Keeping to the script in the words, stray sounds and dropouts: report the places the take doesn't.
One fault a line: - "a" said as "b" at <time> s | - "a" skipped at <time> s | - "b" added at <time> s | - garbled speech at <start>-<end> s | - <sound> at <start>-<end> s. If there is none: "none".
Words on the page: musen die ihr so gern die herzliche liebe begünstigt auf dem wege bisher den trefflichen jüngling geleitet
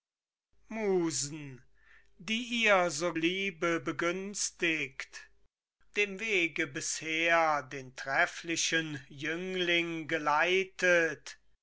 - "gern die herzliche" skipped at 3.1 s
- "auf" skipped at 5.3 s